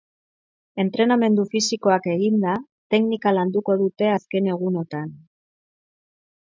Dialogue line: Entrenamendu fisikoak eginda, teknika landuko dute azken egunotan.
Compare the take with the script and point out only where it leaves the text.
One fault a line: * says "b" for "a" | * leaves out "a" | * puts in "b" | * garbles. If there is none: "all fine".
all fine